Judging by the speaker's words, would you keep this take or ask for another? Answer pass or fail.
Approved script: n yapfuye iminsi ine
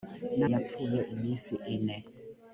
pass